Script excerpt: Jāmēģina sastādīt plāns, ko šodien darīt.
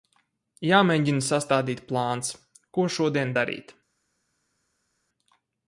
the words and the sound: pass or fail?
pass